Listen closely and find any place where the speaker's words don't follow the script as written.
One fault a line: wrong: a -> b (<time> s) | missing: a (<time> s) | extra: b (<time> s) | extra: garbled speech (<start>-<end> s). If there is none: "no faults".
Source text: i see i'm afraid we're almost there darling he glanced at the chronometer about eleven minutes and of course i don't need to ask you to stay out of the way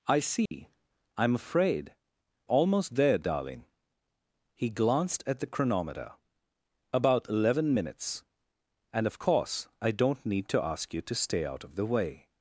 missing: we're (1.9 s)